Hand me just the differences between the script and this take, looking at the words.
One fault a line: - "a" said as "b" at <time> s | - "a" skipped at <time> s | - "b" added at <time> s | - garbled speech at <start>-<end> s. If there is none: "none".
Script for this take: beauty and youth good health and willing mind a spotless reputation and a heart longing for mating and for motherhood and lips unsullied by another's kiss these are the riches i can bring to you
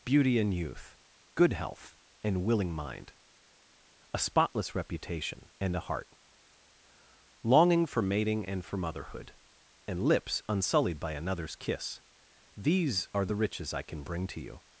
none